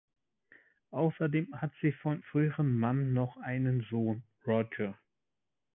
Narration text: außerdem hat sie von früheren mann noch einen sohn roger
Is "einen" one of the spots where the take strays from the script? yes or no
no